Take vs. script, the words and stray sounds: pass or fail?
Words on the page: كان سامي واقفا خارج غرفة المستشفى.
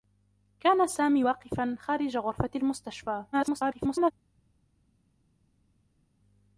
fail